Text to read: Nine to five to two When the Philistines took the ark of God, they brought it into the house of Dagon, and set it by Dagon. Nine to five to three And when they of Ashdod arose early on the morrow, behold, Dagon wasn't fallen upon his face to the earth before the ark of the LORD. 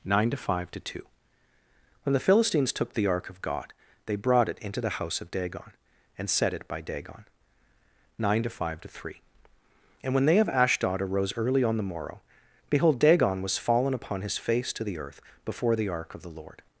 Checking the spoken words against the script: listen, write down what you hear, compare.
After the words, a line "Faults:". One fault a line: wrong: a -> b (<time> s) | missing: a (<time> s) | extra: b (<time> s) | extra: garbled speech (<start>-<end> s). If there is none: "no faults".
Nine to five to two When the Philistines took the ark of God, they brought it into the house of Dagon, and set it by Dagon. Nine to five to three And when they of Ashdod arose early on the morrow, behold, Dagon was fallen upon his face to the earth before the ark of the LORD.
Faults:
wrong: wasn't -> was (13.4 s)